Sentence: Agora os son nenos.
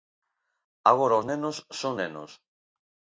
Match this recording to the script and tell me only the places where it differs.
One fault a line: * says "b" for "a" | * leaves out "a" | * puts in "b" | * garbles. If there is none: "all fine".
* puts in "nenos"